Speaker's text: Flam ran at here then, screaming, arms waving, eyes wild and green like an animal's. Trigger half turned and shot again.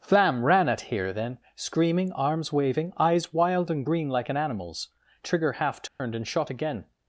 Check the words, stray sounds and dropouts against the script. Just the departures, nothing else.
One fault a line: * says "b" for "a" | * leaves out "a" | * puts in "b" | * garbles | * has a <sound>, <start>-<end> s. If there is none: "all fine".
* has a dropout, 5.9-6.0 s